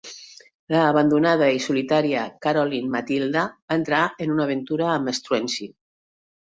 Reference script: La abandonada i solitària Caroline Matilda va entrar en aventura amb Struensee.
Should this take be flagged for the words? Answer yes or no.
yes